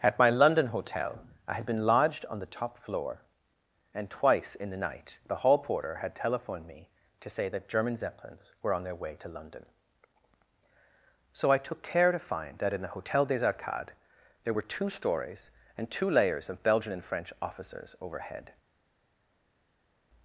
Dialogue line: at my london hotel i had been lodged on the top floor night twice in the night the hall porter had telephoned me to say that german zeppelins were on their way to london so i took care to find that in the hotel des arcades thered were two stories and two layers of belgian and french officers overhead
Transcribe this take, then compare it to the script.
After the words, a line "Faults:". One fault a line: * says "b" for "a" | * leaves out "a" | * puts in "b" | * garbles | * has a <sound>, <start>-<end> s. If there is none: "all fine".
at my london hotel i had been lodged on the top floor and twice in the night the hall porter had telephoned me to say that german zeppelins were on their way to london so i took care to find that in the hotel des arcades there were two stories and two layers of belgian and french officers overhead
Faults:
* says "and" for "night"
* says "there" for "thered"